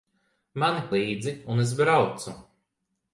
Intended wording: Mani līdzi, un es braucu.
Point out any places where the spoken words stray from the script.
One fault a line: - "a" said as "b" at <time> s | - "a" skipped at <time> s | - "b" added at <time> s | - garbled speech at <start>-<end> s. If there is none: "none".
none